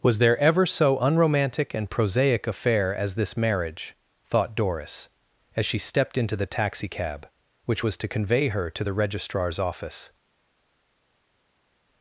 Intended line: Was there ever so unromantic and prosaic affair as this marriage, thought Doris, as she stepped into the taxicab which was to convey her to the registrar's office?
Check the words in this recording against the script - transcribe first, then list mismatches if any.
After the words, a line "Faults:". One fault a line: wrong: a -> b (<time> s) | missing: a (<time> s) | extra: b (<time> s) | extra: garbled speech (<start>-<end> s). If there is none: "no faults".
Was there ever so unromantic and prosaic affair as this marriage, thought Doris, as she stepped into the taxicab which was to convey her to the registrar's office?
Faults:
no faults